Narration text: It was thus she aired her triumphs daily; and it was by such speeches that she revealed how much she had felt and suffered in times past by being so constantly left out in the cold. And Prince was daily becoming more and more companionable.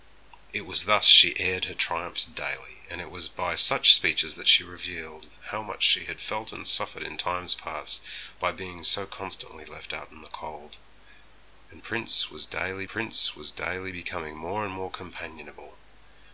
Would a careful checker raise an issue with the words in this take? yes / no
yes